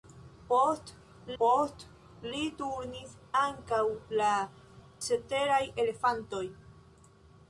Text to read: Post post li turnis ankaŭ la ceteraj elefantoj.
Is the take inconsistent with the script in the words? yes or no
no